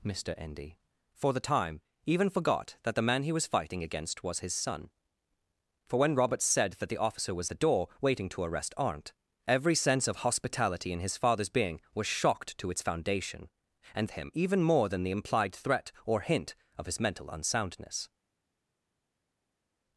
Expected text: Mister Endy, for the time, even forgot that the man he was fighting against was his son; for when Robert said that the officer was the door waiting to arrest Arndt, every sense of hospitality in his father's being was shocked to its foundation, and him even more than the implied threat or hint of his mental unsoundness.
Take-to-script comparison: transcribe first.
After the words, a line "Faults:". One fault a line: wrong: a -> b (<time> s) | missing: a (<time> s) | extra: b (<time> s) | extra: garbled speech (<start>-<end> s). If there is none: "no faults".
Mister Endy, for the time, even forgot that the man he was fighting against was his son; for when Robert said that the officer was the door waiting to arrest Arndt, every sense of hospitality in his father's being was shocked to its foundation, and him even more than the implied threat or hint of his mental unsoundness.
Faults:
no faults